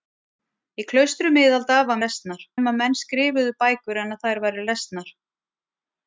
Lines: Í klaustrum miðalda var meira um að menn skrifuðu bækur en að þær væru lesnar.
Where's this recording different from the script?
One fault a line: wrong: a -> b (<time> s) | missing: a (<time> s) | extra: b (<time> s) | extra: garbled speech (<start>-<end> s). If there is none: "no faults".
wrong: meira -> lesnar (2.1 s)